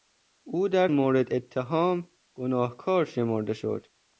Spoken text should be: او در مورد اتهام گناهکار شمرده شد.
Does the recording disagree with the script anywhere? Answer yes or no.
no